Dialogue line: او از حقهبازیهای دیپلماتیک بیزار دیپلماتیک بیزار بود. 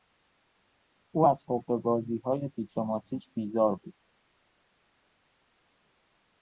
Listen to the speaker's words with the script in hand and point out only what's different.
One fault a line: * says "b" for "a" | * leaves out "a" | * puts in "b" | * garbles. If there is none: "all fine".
* leaves out "دیپلماتیک بیزار"